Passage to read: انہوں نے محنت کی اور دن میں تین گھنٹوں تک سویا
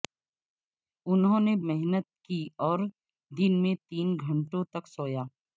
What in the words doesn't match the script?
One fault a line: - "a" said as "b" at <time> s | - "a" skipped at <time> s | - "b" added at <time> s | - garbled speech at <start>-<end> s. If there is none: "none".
none